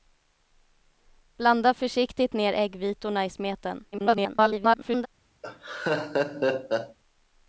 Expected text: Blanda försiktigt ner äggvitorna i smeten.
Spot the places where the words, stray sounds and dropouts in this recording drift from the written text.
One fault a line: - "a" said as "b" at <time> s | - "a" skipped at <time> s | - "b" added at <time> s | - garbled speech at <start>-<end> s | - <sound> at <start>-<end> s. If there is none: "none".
- garbled speech at 3.9-5.1 s
- laugh at 5.4-7.0 s